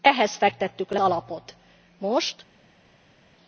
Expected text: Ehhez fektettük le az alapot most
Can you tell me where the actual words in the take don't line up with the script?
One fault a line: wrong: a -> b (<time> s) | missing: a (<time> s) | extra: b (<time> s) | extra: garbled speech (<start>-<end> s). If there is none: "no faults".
missing: az (1.0 s)